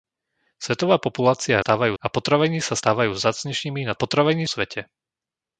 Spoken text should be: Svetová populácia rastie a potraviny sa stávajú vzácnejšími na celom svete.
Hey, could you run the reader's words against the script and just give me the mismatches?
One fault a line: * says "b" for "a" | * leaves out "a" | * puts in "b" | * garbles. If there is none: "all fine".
* says "stávajú" for "rastie"
* says "potraviny" for "celom"